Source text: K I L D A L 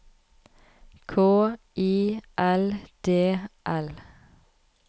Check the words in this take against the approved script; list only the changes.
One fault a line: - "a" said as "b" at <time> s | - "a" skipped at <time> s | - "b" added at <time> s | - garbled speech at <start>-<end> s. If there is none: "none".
- "A" skipped at 3.4 s